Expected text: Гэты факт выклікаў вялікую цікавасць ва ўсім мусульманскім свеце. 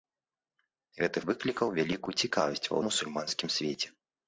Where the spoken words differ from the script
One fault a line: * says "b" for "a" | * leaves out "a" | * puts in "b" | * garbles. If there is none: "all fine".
* leaves out "факт"
* leaves out "ўсім"